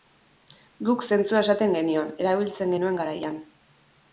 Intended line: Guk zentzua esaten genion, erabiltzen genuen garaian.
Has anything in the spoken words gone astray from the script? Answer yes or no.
no